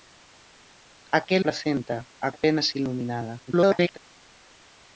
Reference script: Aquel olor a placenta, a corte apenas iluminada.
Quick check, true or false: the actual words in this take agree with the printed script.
false